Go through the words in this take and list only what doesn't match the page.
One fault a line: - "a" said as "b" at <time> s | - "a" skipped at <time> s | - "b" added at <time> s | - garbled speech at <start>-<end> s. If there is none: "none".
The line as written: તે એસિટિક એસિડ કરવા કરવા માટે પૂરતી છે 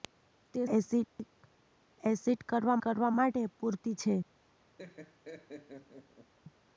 none